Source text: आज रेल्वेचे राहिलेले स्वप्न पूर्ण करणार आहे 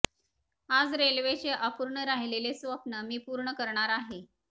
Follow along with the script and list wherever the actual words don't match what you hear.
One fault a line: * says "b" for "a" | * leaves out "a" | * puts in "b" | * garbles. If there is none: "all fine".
* puts in "अपूर्ण"
* puts in "मी"